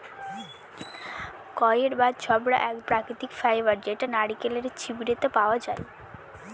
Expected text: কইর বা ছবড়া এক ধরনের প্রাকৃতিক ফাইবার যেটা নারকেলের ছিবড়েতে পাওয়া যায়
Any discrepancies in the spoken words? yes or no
yes